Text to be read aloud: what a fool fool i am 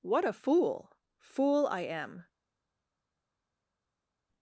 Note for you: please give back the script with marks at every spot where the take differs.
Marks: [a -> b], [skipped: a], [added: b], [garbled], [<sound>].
what a fool fool i am